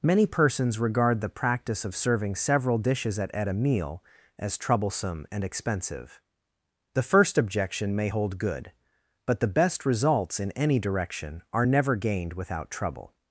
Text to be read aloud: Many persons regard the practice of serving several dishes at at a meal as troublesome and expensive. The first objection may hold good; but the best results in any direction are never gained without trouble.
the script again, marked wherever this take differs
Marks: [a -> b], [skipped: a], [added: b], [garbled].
Many persons regard the practice of serving several dishes at at a meal as troublesome and expensive. The first objection may hold good; but the best results in any direction are never gained without trouble.